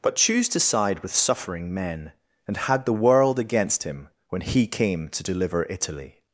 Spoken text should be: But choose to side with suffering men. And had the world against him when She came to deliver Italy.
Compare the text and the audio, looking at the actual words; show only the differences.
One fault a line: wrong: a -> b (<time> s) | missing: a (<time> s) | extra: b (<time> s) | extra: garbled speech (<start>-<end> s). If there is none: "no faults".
wrong: She -> He (4.4 s)